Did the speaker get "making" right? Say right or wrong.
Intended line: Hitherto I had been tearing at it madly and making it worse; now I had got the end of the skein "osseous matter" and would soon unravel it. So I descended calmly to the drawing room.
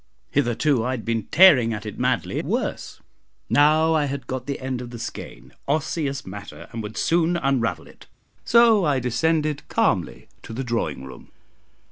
wrong